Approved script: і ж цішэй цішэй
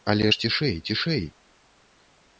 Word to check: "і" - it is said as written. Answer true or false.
false